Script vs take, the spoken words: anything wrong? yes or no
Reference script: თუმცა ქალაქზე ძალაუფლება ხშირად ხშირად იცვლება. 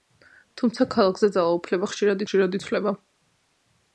no